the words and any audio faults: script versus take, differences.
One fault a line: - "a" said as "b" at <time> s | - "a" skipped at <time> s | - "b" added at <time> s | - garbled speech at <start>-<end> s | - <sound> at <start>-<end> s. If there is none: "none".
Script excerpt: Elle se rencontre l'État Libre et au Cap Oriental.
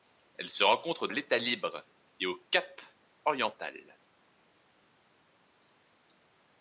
none